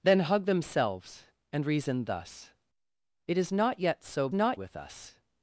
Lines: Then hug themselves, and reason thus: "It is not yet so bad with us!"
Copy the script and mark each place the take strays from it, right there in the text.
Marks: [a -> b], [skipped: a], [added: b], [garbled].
Then hug themselves, and reason thus: "It is not yet so [bad -> not] with us!"